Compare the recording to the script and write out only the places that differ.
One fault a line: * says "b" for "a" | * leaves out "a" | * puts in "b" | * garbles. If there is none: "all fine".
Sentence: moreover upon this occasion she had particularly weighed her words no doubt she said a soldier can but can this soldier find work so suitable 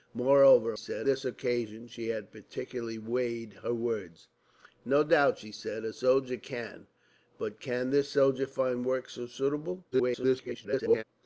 * says "said" for "upon"
* garbles